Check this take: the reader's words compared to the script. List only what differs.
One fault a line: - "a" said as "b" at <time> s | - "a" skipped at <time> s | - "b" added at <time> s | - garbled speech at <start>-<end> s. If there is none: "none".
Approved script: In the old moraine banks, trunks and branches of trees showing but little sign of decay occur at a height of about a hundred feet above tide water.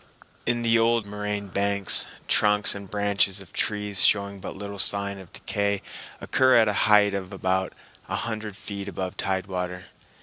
none